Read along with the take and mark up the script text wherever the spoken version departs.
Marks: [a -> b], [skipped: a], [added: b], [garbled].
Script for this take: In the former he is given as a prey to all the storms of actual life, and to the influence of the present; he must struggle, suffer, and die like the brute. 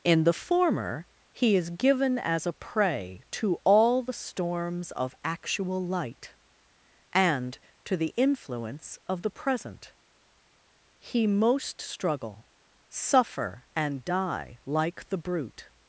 In the former he is given as a prey to all the storms of actual [life, -> light] and to the influence of the present; he [must -> most] struggle, suffer, and die like the brute.